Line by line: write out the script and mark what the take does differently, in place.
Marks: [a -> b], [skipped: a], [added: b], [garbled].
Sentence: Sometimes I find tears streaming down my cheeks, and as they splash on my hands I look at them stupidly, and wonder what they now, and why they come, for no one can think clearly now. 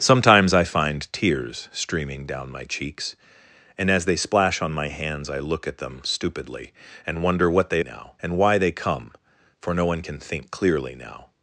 Sometimes I find tears streaming down my cheeks, and as they splash on my hands I look at them stupidly, and wonder what they now, and why they come, for no one can think clearly now.